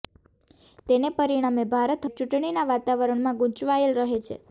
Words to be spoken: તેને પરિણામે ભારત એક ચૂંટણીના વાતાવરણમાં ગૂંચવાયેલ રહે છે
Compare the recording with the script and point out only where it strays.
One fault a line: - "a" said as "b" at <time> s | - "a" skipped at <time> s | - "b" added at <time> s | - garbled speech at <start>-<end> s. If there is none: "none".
none